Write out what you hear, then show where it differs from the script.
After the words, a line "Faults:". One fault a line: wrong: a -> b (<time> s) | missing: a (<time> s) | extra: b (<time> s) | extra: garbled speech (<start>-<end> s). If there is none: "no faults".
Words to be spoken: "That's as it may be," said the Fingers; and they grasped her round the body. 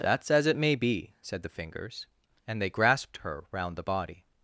"That's as it may be," said the Fingers; and they grasped her round the body.
Faults:
no faults